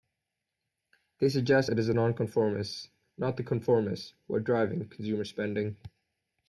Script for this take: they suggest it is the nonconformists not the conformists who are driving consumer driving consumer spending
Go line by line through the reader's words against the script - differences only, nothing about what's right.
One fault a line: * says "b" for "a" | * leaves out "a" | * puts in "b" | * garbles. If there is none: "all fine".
* leaves out "driving consumer"